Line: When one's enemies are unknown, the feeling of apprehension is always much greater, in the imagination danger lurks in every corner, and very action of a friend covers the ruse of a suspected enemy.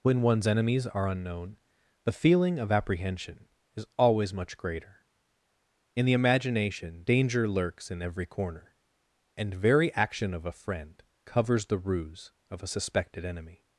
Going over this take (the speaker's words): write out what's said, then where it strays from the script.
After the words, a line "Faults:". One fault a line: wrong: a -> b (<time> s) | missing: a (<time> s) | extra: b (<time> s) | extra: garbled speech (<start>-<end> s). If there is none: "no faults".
When one's enemies are unknown, the feeling of apprehension is always much greater, in the imagination danger lurks in every corner, and very action of a friend covers the ruse of a suspected enemy.
Faults:
no faults